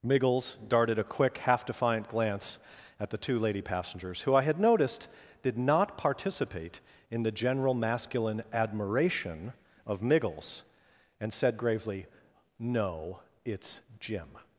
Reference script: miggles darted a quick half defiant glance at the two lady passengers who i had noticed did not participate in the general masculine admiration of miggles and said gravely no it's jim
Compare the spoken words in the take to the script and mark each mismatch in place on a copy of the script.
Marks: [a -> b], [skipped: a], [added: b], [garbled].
miggles darted a quick half defiant glance at the two lady passengers who i had noticed did not participate in the general masculine admiration of miggles and said gravely no it's jim